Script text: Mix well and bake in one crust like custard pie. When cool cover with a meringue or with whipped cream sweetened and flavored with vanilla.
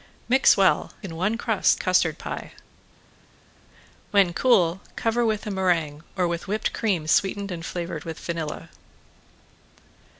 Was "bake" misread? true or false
true